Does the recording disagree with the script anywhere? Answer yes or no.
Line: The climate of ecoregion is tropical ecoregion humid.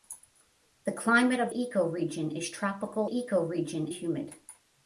no